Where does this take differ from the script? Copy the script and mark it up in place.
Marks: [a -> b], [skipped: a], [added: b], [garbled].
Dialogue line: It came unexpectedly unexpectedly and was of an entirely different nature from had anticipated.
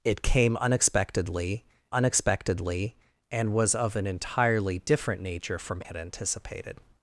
It came unexpectedly unexpectedly and was of an entirely different nature from had anticipated.